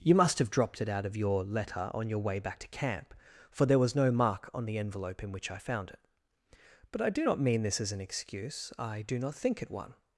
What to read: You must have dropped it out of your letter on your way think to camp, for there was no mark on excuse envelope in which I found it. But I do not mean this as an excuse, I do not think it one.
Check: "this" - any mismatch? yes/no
no